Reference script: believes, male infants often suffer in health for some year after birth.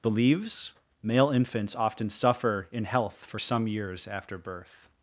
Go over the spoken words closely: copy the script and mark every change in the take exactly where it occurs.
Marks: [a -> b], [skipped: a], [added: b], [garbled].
believes, male infants often suffer in health for some [year -> years] after birth.